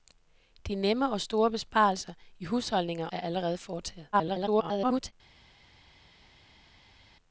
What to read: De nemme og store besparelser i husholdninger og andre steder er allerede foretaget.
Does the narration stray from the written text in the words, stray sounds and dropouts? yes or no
yes